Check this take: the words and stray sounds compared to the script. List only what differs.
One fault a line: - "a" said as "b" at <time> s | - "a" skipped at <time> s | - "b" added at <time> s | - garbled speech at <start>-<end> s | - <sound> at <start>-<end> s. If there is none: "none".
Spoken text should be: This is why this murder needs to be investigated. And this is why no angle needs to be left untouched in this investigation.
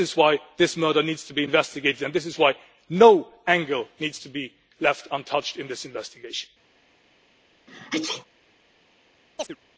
- sneeze at 7.7-8.3 s
- chirp at 9.4-9.6 s